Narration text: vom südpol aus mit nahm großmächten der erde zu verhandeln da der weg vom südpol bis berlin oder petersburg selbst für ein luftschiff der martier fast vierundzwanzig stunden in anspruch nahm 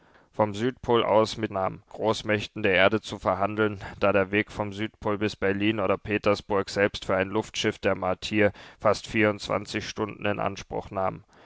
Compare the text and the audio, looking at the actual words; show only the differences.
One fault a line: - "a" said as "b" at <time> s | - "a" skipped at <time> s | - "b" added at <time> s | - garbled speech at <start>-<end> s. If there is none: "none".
none